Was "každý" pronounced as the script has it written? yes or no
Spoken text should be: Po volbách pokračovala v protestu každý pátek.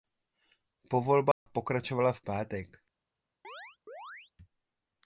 no